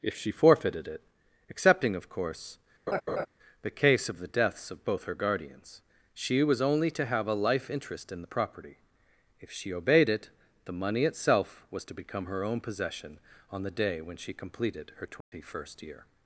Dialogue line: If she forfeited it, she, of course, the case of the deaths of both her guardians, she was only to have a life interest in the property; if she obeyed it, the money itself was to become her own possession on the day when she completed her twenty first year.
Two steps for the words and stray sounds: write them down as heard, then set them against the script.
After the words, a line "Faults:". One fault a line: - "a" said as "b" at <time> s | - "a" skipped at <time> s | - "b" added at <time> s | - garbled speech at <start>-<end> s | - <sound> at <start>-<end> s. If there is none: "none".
If she forfeited it, excepting, of course, the case of the deaths of both her guardians, she was only to have a life interest in the property; if she obeyed it, the money itself was to become her own possession on the day when she completed her twenty first year.
Faults:
- "she" said as "excepting" at 1.5 s
- laugh at 2.9-3.3 s
- dropout at 15.2-15.3 s